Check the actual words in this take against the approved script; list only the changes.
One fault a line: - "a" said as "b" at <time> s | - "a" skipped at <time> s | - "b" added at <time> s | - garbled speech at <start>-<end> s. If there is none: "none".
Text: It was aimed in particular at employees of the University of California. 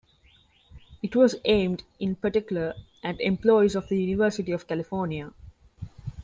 none